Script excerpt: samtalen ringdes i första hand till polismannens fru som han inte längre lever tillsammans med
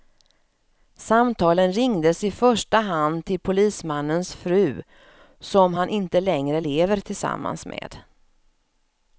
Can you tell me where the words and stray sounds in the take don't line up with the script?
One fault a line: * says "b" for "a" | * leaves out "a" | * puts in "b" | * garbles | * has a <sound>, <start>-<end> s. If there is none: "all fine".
all fine